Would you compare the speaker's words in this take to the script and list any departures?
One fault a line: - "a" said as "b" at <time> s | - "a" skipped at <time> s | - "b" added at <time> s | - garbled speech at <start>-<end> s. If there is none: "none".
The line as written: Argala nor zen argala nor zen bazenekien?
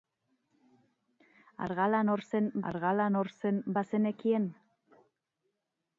none